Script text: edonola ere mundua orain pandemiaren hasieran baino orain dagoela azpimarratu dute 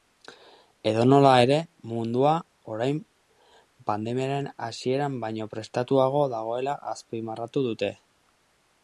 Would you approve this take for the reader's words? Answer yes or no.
no